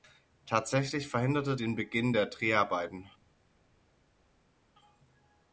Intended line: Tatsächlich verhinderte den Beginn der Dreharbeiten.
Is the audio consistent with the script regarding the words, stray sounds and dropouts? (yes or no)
yes